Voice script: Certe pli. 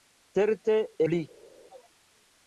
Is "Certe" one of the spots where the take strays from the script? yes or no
no